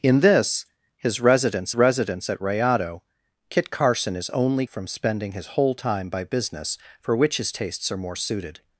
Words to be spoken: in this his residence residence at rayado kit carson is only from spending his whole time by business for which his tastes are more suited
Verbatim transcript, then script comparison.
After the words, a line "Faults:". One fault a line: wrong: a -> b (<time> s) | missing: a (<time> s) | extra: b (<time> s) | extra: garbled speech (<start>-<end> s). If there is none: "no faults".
in this his residence residence at rayado kit carson is only from spending his whole time by business for which his tastes are more suited
Faults:
no faults